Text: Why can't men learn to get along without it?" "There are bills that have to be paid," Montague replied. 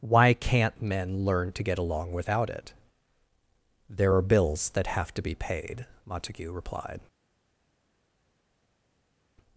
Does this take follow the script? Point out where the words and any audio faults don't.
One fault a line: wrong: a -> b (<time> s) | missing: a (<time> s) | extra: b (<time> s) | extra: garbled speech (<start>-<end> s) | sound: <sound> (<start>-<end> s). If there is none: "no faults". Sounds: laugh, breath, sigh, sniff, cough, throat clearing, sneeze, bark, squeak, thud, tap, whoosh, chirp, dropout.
no faults